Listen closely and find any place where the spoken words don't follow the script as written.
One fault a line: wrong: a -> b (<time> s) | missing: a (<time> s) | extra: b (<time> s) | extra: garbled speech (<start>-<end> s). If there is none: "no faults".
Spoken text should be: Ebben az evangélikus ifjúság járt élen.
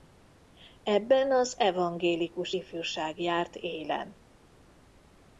no faults